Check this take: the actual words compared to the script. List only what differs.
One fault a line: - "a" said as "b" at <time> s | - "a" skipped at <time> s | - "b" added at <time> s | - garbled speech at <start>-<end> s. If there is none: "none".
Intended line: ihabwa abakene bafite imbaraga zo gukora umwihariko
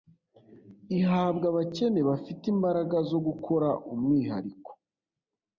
none